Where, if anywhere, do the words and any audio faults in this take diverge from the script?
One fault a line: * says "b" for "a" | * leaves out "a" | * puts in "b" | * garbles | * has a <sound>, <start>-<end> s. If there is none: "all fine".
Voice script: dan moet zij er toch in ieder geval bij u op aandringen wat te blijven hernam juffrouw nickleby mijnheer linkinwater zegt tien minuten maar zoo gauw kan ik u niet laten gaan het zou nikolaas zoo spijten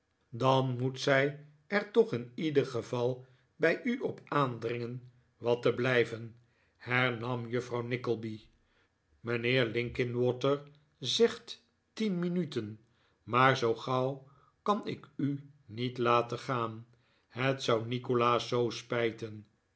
all fine